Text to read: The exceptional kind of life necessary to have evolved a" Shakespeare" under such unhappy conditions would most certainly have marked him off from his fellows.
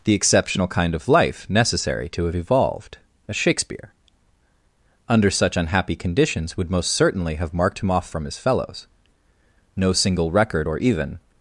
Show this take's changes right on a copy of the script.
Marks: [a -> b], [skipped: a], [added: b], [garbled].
The exceptional kind of life necessary to have evolved a" Shakespeare" under such unhappy conditions would most certainly have marked him off from his fellows. [added: No single record or even]